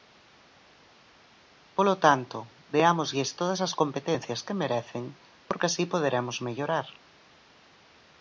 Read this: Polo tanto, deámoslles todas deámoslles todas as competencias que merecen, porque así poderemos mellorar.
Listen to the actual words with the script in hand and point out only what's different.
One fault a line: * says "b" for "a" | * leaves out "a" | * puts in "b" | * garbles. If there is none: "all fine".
* leaves out "deámoslles todas"